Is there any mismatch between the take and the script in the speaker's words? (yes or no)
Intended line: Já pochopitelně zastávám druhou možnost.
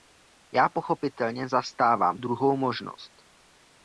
no